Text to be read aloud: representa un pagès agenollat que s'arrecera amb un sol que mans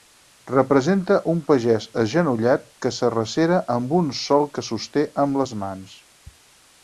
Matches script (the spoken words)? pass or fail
fail